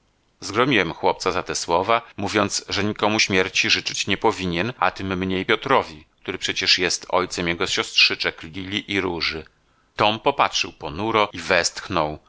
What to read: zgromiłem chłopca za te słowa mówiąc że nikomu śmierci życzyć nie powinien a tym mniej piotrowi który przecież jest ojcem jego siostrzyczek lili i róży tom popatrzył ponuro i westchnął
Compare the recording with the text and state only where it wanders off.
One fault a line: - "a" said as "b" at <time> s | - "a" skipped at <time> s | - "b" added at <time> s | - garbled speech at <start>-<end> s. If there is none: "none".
none